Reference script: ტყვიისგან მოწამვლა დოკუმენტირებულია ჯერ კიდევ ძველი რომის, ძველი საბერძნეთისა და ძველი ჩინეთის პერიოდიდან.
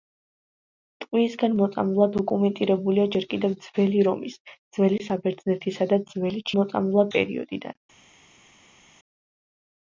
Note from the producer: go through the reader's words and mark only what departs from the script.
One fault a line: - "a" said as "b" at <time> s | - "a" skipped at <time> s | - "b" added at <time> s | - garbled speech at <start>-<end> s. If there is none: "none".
- "ჩინეთის" said as "მოწამვლა" at 6.6 s